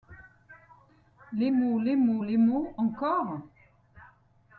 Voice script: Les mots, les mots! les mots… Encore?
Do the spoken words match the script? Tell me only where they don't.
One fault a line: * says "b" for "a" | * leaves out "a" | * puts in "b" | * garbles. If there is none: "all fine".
all fine